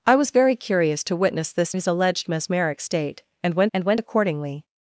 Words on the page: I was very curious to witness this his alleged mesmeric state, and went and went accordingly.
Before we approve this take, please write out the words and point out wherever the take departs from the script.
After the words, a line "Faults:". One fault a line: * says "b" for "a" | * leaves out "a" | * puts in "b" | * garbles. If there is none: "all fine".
I was very curious to witness this his alleged mesmeric state, and went and went accordingly.
Faults:
all fine